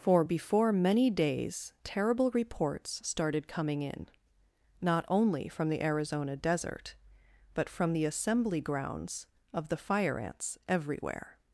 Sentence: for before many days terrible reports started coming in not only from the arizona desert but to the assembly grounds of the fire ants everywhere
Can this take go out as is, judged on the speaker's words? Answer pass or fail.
fail